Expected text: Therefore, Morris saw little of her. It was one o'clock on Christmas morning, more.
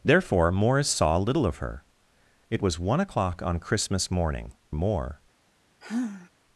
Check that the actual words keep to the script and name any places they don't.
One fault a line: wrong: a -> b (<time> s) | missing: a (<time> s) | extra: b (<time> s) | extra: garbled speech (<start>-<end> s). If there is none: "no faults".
no faults